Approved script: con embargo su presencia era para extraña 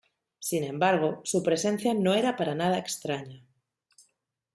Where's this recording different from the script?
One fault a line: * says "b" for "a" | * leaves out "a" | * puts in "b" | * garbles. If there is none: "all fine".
* says "sin" for "con"
* puts in "no"
* puts in "nada"